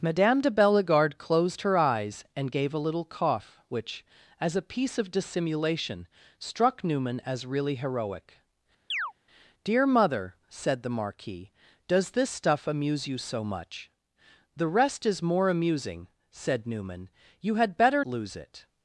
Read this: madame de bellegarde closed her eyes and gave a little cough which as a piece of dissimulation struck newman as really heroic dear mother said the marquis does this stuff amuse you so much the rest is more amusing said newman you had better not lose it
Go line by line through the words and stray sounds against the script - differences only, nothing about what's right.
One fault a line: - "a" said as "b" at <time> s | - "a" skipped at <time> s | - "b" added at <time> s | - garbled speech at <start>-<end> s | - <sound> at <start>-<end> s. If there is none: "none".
- chirp at 8.9-9.1 s
- "not" skipped at 18.0 s